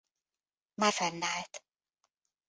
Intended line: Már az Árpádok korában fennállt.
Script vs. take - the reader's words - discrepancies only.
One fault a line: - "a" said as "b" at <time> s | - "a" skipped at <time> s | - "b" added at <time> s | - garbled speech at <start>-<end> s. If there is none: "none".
- "az Árpádok korában" skipped at 0.9 s